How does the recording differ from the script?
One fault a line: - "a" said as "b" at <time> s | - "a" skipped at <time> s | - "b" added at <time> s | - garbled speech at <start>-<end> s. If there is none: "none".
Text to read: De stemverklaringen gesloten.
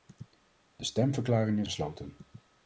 none